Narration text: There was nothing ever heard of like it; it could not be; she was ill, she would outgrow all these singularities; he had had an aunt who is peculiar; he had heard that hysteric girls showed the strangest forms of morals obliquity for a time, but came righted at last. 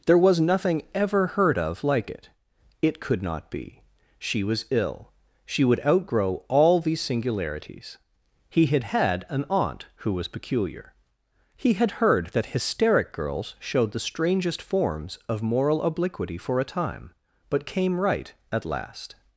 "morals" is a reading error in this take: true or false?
true